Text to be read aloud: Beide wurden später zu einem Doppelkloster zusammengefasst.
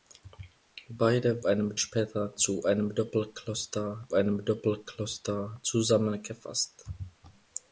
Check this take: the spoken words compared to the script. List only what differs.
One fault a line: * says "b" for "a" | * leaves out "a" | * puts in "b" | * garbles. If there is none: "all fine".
* says "einem" for "wurden"
* puts in "einem Doppelkloster"